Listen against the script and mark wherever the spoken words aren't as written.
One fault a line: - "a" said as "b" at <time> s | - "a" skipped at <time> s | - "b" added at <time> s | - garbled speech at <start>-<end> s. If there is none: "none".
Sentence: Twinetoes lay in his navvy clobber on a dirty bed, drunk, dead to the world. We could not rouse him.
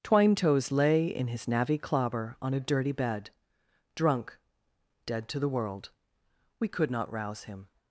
none